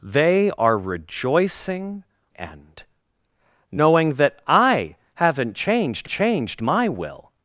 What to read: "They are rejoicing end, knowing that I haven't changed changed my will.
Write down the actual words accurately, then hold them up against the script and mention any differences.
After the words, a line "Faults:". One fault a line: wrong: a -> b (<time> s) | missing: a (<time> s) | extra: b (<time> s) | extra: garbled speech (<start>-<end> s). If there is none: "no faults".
"They are rejoicing end, knowing that I haven't changed changed my will.
Faults:
no faults